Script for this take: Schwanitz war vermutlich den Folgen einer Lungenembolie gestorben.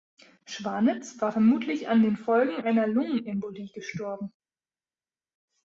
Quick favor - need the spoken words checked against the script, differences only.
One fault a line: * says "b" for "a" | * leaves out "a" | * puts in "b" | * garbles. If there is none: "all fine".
* puts in "an"